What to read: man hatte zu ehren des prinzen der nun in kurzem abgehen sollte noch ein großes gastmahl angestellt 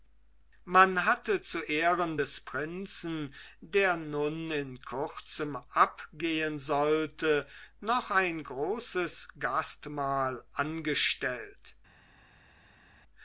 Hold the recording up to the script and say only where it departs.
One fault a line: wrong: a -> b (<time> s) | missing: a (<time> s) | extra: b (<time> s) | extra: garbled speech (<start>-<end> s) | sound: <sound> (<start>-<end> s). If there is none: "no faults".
no faults